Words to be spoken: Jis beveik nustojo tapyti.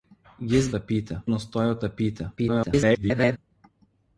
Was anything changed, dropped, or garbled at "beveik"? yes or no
yes